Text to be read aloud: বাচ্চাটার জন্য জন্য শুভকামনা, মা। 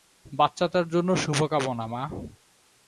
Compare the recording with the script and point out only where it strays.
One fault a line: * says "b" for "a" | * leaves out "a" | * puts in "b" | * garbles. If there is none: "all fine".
* leaves out "জন্য"